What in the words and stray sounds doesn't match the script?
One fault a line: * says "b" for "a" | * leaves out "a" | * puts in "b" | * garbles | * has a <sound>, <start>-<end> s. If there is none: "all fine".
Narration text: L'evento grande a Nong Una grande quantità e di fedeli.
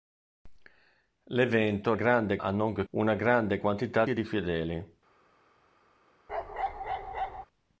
* has a bark, 6.3-7.5 s